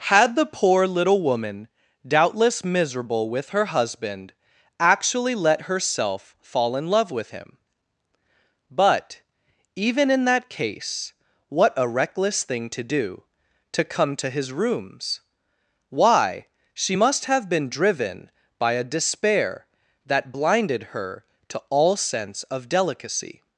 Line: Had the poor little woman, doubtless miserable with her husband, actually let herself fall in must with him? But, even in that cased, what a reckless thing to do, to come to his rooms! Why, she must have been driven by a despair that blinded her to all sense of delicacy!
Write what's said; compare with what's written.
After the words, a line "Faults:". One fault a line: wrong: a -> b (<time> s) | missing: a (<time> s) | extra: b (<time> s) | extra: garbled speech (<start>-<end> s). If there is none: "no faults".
Had the poor little woman, doubtless miserable with her husband, actually let herself fall in love with him? But, even in that case, what a reckless thing to do, to come to his rooms! Why, she must have been driven by a despair that blinded her to all sense of delicacy!
Faults:
wrong: must -> love (6.9 s)
wrong: cased -> case (10.5 s)